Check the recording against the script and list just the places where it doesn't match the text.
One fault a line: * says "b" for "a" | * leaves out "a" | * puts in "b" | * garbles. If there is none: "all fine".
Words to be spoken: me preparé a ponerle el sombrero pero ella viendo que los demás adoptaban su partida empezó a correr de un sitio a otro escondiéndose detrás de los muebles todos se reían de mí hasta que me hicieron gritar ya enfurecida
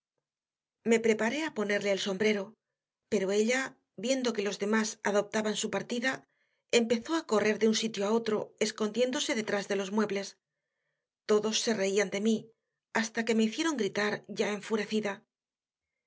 all fine